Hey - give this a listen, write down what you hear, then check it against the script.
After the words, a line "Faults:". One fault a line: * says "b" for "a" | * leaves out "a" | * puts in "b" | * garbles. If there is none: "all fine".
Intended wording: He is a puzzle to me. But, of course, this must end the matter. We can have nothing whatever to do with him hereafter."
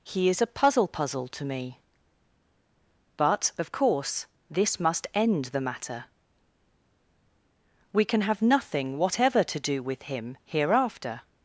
He is a puzzle puzzle to me. But, of course, this must end the matter. We can have nothing whatever to do with him hereafter."
Faults:
* puts in "puzzle"